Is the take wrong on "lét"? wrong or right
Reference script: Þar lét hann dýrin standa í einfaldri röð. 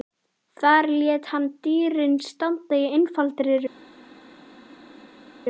right